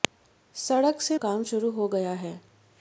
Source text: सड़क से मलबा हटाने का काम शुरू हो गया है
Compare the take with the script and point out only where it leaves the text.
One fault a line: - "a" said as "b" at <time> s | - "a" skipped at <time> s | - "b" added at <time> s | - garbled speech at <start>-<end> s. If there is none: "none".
- "मलबा हटाने का" skipped at 1.2 s